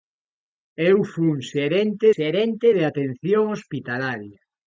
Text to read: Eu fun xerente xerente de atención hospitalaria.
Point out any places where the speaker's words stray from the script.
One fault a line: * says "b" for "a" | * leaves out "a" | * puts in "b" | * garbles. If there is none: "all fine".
all fine